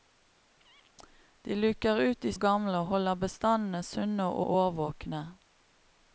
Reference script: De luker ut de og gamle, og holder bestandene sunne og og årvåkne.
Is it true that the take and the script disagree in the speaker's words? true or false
false